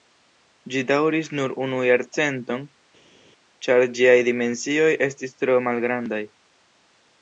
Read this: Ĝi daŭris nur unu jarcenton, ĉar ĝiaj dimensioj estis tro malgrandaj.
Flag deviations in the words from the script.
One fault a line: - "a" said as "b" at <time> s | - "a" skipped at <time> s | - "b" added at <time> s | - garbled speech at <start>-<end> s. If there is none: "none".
none